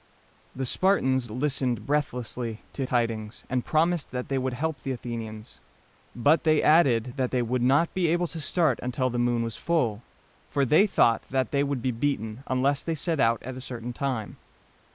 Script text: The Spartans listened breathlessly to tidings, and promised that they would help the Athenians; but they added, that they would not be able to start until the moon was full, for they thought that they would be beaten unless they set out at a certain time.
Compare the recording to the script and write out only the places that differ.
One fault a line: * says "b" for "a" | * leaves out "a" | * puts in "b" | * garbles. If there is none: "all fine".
all fine